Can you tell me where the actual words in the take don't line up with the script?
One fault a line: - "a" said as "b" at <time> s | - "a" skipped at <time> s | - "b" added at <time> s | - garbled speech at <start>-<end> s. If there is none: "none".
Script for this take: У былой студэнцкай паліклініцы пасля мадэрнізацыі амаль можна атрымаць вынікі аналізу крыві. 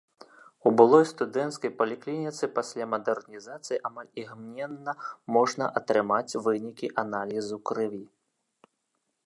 - "імгненна" added at 4.2 s